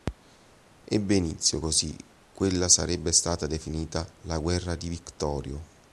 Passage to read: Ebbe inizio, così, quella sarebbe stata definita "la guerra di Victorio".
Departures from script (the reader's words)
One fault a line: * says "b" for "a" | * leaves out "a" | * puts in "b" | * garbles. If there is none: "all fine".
all fine